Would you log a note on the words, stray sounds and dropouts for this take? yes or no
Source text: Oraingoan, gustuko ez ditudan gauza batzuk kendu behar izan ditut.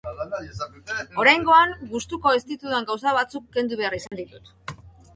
yes